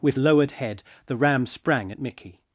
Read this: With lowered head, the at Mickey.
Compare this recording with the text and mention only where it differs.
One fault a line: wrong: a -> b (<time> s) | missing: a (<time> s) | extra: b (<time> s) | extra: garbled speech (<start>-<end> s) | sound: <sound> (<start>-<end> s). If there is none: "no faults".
extra: ram sprang (1.2 s)